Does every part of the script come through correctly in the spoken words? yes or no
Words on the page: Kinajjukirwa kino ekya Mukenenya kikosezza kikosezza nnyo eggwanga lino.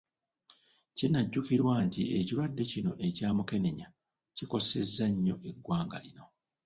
no